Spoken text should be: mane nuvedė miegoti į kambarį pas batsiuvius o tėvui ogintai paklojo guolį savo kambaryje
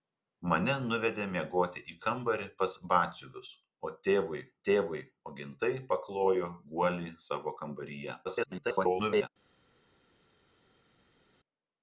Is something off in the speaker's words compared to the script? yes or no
yes